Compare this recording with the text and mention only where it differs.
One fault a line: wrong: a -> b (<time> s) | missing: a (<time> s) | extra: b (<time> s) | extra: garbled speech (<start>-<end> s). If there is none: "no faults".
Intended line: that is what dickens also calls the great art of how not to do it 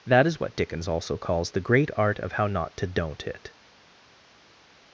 wrong: do -> don't (2.9 s)